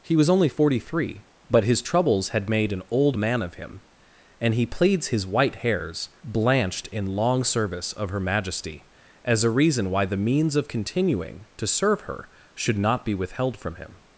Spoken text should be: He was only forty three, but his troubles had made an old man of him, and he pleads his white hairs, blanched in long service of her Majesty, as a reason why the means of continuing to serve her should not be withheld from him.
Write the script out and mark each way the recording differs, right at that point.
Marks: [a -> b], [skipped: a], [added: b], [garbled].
He was only forty three, but his troubles had made an old man of him, and he pleads his white hairs, blanched in long service of her Majesty, as a reason why the means of continuing to serve her should not be withheld from him.